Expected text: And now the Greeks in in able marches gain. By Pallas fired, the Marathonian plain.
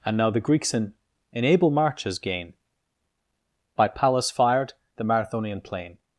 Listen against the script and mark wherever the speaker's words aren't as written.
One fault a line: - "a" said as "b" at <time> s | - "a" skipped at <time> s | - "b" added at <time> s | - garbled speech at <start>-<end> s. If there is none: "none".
none